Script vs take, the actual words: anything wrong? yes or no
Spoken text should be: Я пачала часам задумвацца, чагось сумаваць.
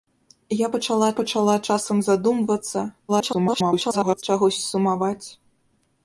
yes